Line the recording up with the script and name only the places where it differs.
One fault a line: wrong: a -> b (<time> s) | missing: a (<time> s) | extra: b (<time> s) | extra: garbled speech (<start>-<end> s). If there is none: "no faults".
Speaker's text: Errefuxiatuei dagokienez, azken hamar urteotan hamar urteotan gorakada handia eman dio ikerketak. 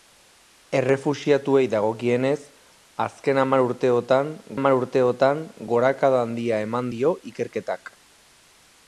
no faults